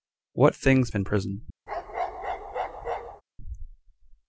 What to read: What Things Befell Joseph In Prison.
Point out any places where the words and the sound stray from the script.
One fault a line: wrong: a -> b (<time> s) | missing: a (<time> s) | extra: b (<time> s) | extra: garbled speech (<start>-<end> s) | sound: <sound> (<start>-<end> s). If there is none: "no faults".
missing: Befell Joseph (0.9 s)
sound: bark (1.7-3.2 s)